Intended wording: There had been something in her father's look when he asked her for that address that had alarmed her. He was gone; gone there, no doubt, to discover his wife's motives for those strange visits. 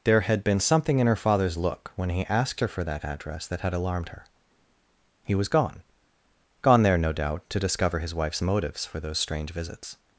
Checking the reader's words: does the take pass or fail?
pass